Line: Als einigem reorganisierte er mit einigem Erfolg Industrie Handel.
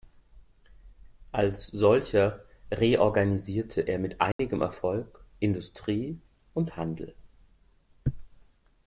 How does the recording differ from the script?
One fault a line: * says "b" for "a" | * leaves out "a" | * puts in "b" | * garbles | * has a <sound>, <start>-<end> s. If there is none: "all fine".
* says "solcher" for "einigem"
* has a dropout, 4.3-4.4 s
* puts in "und"